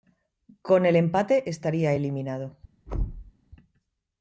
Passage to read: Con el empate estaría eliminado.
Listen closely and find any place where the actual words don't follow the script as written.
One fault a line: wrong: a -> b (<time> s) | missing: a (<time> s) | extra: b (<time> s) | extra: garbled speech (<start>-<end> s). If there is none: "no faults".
no faults